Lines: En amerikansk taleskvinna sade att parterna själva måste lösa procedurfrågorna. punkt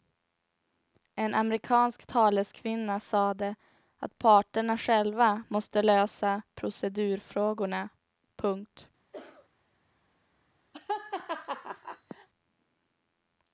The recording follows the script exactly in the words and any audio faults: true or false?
false